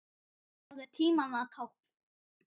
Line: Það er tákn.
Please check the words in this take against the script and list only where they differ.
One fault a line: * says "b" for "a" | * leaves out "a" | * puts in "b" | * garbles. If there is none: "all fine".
* puts in "tímanna"